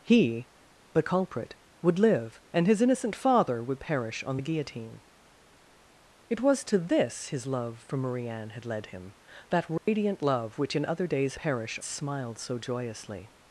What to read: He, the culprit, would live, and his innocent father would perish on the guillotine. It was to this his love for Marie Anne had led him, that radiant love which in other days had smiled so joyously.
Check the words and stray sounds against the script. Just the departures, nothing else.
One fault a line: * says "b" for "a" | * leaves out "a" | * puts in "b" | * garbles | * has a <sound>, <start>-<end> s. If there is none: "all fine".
* has a dropout, 9.8-9.9 s
* says "perish" for "had"